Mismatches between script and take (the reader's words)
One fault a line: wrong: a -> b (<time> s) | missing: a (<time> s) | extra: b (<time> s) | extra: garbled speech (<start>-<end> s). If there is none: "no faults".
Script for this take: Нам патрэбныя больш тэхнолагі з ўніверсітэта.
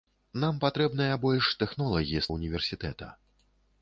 no faults